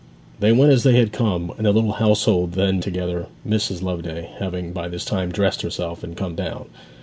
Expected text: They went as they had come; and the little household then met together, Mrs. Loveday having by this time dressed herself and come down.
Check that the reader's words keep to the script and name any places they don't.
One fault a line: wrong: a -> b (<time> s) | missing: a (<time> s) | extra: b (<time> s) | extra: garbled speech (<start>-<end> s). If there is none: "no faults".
missing: met (2.8 s)